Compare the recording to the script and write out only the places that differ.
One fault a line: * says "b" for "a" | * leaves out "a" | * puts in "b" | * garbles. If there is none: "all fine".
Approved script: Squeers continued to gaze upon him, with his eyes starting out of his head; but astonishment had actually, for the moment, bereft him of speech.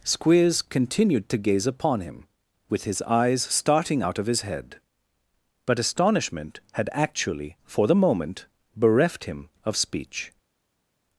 all fine